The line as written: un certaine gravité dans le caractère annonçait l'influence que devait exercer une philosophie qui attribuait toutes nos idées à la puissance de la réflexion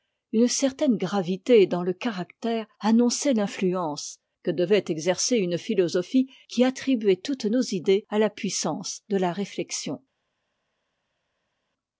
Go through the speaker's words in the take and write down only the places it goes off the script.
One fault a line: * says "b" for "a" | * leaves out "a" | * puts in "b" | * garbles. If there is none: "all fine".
* says "une" for "un"